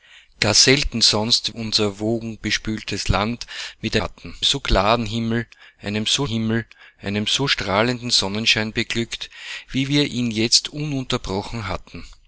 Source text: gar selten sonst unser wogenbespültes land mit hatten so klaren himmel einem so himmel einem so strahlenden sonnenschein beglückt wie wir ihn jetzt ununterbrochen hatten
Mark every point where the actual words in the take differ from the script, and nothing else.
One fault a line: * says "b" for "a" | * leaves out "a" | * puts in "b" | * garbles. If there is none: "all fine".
all fine